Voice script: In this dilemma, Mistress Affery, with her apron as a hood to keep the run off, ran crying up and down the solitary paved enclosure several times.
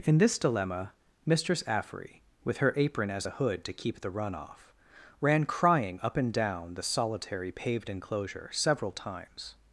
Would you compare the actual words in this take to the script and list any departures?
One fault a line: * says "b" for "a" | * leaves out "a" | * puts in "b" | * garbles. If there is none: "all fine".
all fine